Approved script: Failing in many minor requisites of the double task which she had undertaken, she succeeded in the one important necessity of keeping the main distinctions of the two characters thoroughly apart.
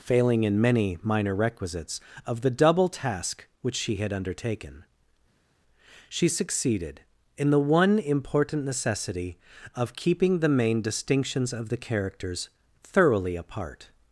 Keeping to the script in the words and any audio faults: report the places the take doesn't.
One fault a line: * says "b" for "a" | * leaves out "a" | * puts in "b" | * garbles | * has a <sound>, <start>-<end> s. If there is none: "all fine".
* leaves out "two"